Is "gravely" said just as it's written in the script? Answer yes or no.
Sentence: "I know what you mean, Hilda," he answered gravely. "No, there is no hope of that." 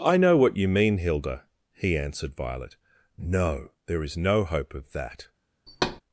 no